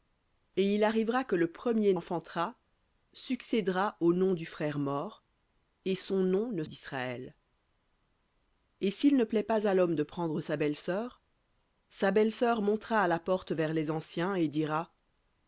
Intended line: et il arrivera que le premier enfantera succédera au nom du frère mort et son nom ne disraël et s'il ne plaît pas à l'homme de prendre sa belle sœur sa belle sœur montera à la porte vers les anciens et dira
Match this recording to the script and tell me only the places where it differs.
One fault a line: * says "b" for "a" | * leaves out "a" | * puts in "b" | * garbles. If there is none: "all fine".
all fine